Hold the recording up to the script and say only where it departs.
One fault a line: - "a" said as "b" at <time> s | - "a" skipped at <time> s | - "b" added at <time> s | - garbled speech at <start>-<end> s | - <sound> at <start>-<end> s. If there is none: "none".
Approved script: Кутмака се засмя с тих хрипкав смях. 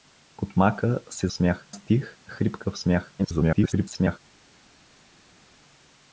- "засмя" said as "смях" at 1.3 s
- garbled speech at 3.2-4.2 s